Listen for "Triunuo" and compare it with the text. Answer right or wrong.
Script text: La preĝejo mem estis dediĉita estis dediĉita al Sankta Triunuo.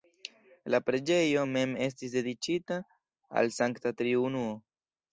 right